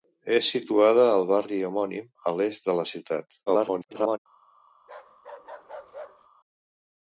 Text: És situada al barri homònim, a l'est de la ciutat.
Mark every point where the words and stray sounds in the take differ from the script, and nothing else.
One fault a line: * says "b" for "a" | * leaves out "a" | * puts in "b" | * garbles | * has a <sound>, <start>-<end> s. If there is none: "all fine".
* garbles
* has a bark, 4.8-6.3 s